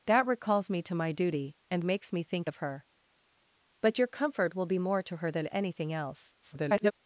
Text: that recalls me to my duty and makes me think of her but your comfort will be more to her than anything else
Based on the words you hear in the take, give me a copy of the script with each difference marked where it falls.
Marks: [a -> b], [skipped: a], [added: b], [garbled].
that recalls me to my duty and makes me think of her but your comfort will be more to her than anything else [garbled]